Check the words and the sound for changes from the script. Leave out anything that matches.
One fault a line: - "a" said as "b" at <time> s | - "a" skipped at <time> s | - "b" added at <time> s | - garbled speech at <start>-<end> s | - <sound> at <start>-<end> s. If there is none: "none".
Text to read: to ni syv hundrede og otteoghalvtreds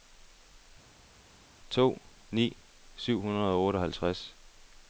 none